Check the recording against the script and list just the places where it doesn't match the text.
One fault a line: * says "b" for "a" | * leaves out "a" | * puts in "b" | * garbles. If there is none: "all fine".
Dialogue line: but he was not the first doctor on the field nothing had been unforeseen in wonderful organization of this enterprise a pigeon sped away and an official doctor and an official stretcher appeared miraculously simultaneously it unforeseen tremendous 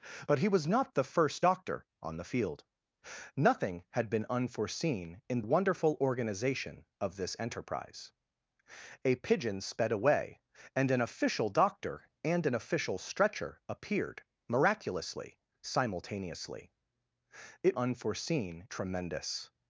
all fine